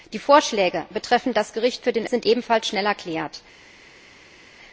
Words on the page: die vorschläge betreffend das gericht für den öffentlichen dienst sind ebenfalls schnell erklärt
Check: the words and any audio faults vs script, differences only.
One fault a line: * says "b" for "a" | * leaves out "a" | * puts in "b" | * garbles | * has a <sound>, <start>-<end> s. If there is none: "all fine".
* leaves out "öffentlichen dienst"